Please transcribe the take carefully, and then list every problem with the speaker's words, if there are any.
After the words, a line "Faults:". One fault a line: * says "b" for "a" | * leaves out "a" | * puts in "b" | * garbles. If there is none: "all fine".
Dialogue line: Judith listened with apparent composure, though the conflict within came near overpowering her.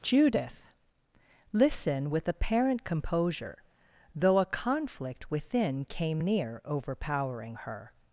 Judith listen with apparent composure, though a conflict within came near overpowering her.
Faults:
* says "listen" for "listened"
* says "a" for "the"